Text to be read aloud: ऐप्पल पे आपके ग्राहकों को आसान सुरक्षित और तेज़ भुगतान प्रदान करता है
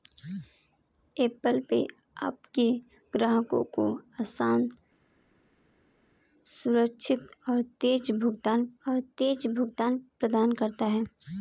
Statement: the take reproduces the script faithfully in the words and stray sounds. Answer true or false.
false